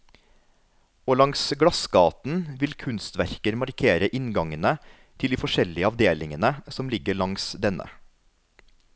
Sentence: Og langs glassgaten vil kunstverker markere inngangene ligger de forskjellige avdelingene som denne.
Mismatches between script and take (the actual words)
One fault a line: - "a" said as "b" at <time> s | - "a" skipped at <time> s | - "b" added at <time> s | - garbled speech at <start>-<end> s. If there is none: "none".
- "ligger" said as "til" at 5.2 s
- "ligger langs" added at 6.9 s